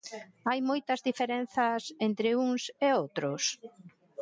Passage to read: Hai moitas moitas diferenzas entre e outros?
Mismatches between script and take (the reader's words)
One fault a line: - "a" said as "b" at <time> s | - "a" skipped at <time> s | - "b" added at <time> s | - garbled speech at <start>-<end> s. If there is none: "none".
- "moitas" skipped at 1.0 s
- "uns" added at 2.5 s